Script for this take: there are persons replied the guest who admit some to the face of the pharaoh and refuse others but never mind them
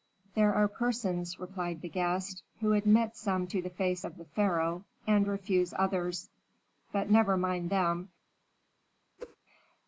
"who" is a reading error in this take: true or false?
false